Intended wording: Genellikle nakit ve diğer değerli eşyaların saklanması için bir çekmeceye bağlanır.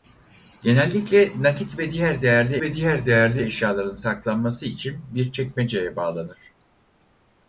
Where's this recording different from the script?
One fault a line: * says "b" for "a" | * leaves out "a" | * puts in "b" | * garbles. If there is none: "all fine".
* puts in "ve diğer değerli"